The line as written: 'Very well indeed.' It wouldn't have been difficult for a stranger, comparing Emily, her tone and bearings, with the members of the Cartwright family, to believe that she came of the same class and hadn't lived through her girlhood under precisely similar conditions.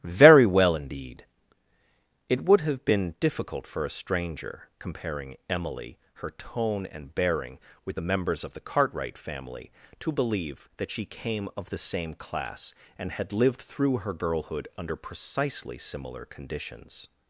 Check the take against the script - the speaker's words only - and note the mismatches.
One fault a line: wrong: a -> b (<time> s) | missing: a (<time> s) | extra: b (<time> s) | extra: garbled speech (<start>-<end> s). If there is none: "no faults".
wrong: wouldn't -> would (2.5 s)
wrong: bearings -> bearing (7.1 s)
wrong: hadn't -> had (13.1 s)